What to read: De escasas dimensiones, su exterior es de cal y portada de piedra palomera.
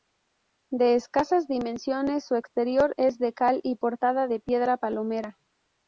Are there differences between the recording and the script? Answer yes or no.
no